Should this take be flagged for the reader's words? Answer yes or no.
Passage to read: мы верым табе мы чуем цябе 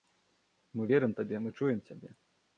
no